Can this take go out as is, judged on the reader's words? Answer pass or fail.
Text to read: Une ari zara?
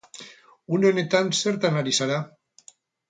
fail